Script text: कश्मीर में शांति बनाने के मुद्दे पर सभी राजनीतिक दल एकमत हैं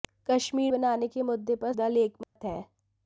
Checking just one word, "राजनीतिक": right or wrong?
wrong